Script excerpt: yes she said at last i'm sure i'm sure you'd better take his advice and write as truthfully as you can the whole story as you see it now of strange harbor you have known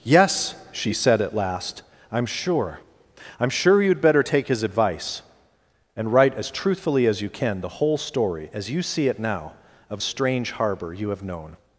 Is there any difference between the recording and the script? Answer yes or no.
no